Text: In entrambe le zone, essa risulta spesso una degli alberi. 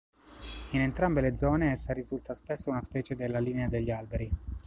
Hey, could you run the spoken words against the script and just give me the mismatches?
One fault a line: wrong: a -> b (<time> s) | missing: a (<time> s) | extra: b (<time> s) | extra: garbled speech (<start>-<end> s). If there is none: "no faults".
extra: specie della linea (2.8 s)